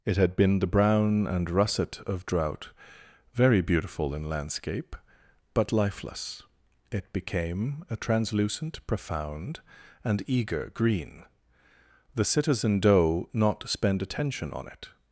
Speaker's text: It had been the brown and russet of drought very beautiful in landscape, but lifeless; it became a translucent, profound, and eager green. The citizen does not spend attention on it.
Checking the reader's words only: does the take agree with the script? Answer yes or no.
no